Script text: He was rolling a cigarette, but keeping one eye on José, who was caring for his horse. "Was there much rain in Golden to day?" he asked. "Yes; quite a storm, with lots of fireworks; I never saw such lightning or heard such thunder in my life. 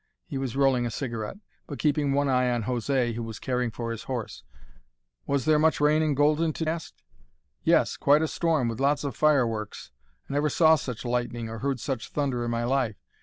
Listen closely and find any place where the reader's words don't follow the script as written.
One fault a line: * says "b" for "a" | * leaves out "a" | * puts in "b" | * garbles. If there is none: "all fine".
* leaves out "day he"